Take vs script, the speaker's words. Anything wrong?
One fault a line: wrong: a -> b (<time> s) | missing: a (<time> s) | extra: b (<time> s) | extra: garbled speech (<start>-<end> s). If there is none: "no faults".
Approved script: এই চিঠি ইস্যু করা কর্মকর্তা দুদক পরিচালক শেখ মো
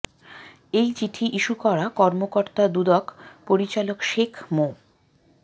no faults